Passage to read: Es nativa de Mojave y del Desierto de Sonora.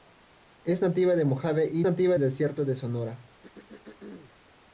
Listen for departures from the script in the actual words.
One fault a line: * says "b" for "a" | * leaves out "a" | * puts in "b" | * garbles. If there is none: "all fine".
* says "nativa" for "del"